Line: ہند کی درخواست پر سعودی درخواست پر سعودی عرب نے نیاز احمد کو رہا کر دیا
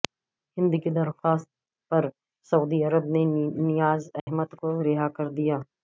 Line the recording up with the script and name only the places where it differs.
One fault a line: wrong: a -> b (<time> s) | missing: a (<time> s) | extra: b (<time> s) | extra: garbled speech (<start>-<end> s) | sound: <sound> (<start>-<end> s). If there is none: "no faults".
missing: درخواست پر سعودی (2.8 s)
sound: dropout (4.2-4.3 s)